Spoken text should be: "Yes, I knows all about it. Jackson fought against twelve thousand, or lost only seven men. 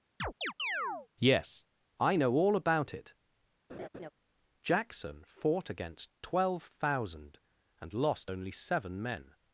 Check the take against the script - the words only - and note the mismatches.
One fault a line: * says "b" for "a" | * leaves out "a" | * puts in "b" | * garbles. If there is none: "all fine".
* says "know" for "knows"
* says "and" for "or"